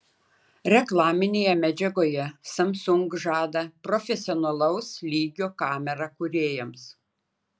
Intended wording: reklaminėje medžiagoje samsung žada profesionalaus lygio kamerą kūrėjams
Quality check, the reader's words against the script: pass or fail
pass